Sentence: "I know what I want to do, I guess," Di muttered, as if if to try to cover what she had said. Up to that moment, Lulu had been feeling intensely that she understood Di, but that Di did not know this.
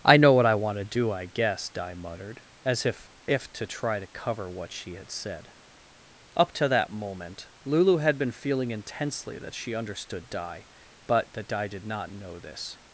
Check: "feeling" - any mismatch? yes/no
no